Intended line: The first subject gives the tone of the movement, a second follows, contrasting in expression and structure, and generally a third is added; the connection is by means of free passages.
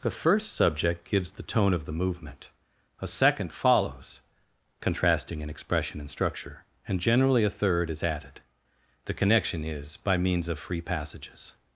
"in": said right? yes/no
yes